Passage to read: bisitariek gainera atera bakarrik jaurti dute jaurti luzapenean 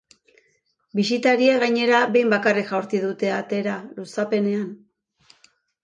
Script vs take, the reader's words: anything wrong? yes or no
yes